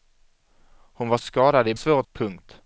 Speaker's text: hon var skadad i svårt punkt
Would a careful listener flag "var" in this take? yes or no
no